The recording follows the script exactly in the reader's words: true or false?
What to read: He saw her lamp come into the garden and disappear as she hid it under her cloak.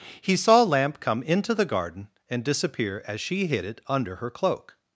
false